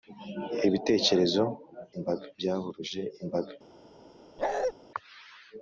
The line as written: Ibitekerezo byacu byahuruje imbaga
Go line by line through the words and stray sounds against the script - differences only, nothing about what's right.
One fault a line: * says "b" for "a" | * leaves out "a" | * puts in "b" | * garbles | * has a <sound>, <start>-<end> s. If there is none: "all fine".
* says "imbaga" for "byacu"
* has a bark, 4.4-4.7 s